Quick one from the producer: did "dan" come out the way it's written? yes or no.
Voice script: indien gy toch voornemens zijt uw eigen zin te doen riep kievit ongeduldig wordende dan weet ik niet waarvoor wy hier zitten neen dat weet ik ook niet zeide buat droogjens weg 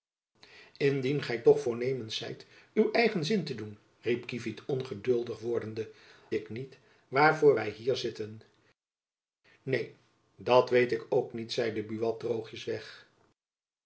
no